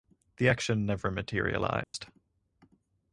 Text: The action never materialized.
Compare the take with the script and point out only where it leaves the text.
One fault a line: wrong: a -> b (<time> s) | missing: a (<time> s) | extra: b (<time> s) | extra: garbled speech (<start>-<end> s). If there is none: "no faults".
no faults